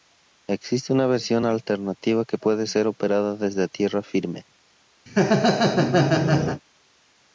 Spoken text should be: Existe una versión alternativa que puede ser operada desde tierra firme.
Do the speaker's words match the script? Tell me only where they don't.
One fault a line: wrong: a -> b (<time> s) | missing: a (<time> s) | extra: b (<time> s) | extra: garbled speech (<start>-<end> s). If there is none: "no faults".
no faults